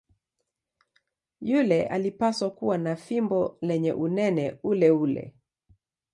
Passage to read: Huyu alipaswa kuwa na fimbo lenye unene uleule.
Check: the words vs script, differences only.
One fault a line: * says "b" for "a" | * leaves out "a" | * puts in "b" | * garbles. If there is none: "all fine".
* says "Yule" for "Huyu"